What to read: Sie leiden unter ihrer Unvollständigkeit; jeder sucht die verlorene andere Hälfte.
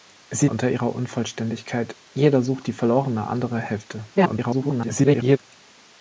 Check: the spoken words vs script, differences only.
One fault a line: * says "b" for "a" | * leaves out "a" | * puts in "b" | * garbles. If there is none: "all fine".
* leaves out "leiden"
* garbles